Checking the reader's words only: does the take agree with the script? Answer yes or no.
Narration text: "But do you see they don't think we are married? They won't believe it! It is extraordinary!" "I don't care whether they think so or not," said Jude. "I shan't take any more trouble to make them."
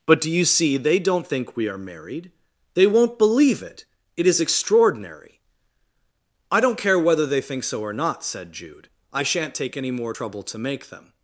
yes